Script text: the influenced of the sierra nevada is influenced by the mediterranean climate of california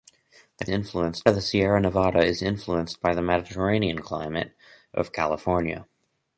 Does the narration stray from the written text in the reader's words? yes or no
no